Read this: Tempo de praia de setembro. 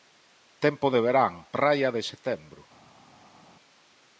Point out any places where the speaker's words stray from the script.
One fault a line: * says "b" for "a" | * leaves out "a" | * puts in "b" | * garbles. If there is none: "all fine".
* puts in "verán"